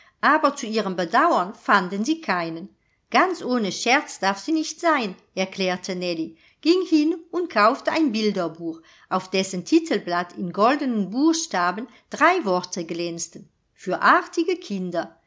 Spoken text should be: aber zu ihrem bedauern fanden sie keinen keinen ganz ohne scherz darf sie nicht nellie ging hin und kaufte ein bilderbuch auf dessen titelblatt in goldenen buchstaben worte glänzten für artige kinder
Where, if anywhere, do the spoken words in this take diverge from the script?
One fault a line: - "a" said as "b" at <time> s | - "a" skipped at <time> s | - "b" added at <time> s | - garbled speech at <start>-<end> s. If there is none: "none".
- "keinen" skipped at 2.7 s
- "sein erklärte" added at 4.8 s
- "drei" added at 12.1 s